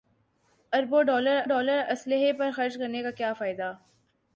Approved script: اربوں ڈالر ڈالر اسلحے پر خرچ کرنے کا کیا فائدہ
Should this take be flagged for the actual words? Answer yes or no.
no